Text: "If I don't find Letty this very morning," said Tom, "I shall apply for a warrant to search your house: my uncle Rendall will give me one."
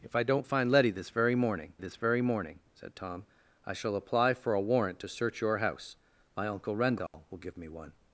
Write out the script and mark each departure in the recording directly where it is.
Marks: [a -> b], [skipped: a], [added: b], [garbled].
"If I don't find Letty this very morning," [added: this very morning] said Tom, "I shall apply for a warrant to search your house: my uncle Rendall will give me one."